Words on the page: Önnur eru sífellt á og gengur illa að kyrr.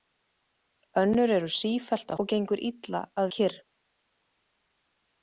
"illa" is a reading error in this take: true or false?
false